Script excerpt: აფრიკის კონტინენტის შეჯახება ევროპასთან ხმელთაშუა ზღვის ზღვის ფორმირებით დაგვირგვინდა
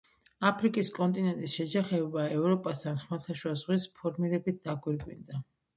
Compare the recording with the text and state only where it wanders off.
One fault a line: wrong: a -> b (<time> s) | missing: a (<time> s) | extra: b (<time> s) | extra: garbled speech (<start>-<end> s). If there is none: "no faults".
missing: ზღვის (3.9 s)